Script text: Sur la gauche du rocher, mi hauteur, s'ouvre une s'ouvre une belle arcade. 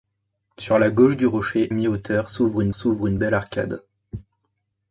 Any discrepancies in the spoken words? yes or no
no